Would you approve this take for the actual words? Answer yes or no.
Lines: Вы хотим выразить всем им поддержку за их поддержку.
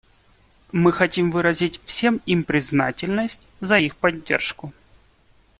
no